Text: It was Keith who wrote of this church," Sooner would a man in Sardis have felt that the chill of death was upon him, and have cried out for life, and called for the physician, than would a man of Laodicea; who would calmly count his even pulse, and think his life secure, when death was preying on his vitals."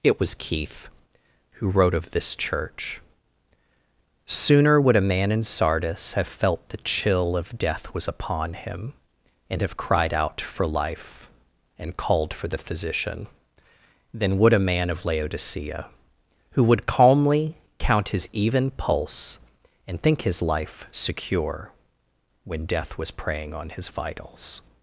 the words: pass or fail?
fail